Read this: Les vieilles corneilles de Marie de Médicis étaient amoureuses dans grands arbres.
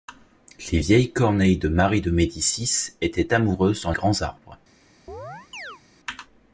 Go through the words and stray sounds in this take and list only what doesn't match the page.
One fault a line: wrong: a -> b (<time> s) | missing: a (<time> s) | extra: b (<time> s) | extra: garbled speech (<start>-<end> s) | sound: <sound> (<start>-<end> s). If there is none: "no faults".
sound: chirp (5.1-5.8 s)